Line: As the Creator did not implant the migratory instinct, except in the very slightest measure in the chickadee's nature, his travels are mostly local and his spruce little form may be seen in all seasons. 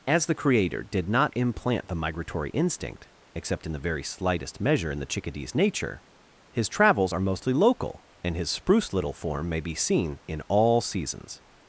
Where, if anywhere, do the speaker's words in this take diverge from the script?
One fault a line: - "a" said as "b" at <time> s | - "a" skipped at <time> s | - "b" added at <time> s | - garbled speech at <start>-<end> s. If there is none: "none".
none